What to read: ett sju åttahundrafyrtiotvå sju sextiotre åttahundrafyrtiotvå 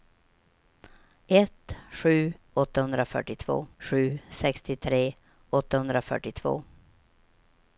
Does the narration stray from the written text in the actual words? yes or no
no